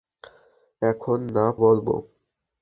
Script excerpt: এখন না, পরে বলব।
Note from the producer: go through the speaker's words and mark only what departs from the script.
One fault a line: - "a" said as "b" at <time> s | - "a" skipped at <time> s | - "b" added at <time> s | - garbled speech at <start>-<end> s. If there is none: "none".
- "পরে" skipped at 1.4 s